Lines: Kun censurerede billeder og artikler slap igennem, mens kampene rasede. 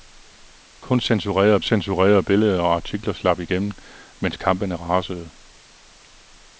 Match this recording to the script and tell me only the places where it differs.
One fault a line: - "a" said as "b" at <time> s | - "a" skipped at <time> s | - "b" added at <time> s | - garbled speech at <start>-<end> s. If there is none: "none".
- "censurerede" added at 1.6 s